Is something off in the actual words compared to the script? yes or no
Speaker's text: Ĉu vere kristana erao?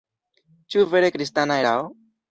no